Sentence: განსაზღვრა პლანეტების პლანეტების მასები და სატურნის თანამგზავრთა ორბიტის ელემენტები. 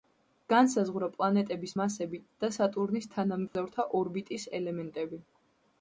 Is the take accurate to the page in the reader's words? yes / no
no